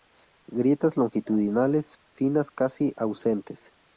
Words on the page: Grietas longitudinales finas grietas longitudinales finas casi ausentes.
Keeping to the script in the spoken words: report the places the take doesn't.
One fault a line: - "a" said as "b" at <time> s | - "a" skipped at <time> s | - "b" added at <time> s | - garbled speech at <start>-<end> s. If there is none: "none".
- "grietas longitudinales finas" skipped at 2.5 s